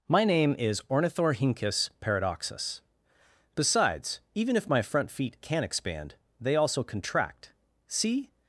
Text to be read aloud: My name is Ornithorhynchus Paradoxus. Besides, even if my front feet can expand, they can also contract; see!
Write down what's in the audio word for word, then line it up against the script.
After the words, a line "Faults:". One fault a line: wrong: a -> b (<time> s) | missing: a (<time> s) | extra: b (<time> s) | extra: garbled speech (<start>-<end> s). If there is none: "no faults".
My name is Ornithorhynchus Paradoxus. Besides, even if my front feet can expand, they also contract; see!
Faults:
missing: can (6.6 s)